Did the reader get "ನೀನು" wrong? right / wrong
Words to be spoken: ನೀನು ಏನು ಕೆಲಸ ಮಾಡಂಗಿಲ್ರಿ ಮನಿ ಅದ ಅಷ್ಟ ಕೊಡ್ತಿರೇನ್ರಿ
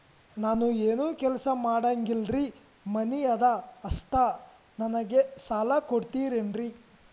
wrong